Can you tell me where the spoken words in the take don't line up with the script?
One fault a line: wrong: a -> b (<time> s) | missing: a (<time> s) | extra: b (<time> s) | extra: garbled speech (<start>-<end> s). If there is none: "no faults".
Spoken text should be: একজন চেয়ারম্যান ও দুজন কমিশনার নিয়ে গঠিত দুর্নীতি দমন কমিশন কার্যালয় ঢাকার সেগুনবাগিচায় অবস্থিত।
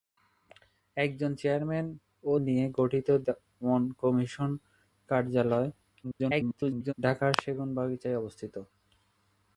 missing: দুজন কমিশনার (2.3 s)
missing: দুর্নীতি (3.1 s)
extra: garbled speech (6.0-6.9 s)